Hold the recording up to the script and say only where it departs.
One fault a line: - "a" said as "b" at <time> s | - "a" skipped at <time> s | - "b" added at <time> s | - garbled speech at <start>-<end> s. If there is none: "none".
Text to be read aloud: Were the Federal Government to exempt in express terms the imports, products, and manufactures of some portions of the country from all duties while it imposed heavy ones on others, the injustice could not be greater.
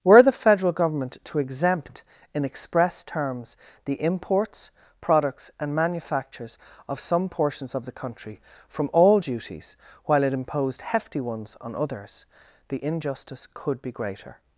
- "heavy" said as "hefty" at 10.8 s
- "not" skipped at 13.8 s